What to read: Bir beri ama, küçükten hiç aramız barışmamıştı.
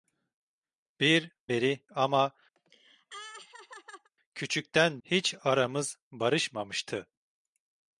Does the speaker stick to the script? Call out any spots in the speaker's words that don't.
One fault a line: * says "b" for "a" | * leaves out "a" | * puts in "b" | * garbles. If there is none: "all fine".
all fine